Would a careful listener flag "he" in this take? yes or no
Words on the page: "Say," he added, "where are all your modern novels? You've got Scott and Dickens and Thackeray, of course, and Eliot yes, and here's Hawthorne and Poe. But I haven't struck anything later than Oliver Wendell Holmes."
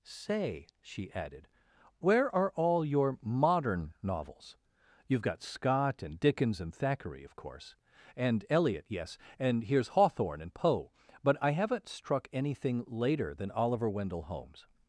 yes